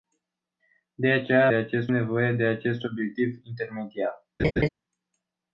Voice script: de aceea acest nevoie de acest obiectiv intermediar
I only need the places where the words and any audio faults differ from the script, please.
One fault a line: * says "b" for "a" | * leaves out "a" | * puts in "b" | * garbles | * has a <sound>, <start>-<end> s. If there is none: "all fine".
* has a laugh, 4.4-4.7 s